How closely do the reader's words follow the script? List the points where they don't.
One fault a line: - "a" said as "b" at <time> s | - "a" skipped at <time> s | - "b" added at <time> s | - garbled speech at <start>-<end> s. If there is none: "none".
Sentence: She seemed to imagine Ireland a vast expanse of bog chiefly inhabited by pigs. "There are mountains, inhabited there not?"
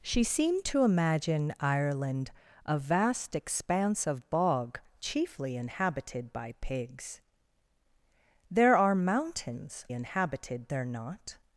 none